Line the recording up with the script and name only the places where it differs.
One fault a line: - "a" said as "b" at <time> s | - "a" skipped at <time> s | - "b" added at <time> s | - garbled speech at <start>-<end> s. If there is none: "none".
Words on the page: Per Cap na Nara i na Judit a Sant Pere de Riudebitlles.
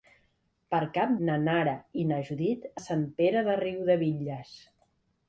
none